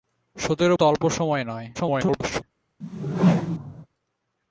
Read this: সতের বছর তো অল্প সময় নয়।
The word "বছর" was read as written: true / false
false